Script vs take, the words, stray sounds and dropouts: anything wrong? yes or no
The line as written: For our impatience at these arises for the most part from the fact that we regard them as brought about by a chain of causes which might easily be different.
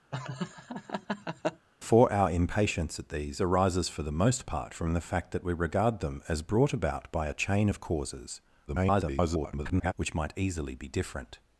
yes